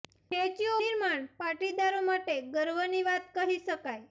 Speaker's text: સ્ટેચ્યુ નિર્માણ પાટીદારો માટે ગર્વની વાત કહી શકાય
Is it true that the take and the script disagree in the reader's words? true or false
false